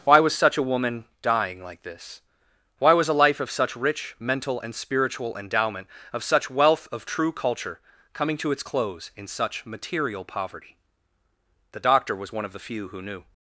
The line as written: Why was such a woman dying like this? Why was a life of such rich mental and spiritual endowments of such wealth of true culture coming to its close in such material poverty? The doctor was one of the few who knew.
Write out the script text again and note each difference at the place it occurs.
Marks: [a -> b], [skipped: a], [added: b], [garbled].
Why was such a woman dying like this? Why was a life of such rich mental and spiritual [endowments -> endowment] of such wealth of true culture coming to its close in such material poverty? The doctor was one of the few who knew.